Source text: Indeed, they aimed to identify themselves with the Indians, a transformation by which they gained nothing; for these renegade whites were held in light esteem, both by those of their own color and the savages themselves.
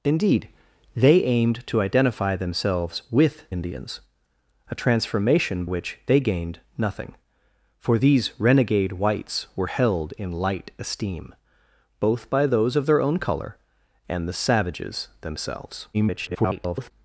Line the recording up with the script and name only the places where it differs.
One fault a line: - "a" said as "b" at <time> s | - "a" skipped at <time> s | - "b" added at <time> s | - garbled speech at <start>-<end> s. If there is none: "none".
- "the" skipped at 3.5 s
- "by" skipped at 5.7 s
- garbled speech at 15.9-16.9 s